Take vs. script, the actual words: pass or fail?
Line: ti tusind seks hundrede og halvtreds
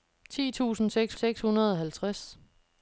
fail